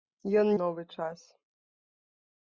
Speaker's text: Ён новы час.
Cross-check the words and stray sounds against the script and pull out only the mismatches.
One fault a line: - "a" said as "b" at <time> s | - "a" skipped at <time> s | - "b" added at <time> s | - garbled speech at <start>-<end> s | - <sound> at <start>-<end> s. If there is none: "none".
none